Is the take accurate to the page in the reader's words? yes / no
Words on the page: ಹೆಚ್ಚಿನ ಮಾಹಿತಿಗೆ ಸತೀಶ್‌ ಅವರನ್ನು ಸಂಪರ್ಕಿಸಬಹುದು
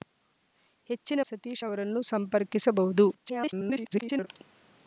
no